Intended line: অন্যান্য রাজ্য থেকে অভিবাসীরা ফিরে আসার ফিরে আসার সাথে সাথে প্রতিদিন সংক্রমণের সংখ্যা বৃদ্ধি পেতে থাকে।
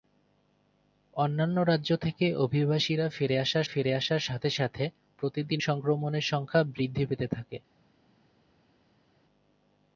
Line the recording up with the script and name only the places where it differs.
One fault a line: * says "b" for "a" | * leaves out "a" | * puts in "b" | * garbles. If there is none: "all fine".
all fine